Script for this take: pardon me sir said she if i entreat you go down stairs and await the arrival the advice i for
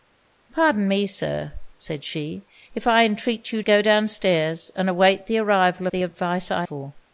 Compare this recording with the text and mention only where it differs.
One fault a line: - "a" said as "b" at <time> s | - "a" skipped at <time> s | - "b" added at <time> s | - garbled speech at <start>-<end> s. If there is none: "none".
none